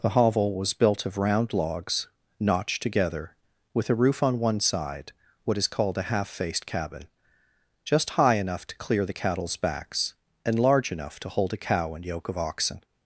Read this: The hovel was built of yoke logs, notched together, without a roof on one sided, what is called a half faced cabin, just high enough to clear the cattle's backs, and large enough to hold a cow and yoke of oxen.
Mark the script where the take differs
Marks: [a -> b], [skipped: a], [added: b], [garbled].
The hovel was built of [yoke -> round] logs, notched together, [without -> with] a roof on one [sided, -> side] what is called a half faced cabin, just high enough to clear the cattle's backs, and large enough to hold a cow and yoke of oxen.